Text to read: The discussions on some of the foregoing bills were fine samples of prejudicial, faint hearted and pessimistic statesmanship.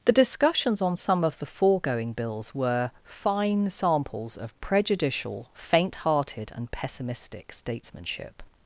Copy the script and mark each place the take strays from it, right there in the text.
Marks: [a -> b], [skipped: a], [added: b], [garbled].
The discussions on some of the foregoing bills were fine samples of prejudicial, faint hearted and pessimistic statesmanship.